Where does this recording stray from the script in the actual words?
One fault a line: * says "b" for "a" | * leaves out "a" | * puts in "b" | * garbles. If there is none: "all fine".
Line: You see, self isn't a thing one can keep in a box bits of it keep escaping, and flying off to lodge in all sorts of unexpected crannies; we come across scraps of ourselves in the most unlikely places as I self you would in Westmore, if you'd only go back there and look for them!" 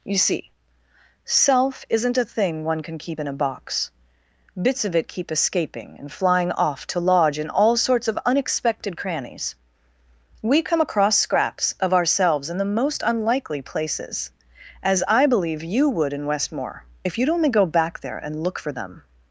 * says "believe" for "self"